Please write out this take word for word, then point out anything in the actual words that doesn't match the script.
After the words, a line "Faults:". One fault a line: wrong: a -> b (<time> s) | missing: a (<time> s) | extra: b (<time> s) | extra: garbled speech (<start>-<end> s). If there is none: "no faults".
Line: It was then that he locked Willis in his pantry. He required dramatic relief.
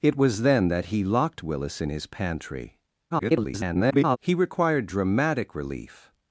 It was then that he locked Willis in his pantry. [garbled] He required dramatic relief.
Faults:
extra: garbled speech (3.1-4.2 s)